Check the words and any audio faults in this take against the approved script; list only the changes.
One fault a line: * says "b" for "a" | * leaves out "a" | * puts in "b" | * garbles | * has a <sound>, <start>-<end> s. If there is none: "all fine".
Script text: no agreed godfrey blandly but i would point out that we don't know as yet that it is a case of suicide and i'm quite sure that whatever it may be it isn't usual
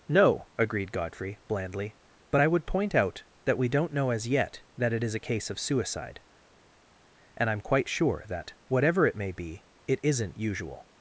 all fine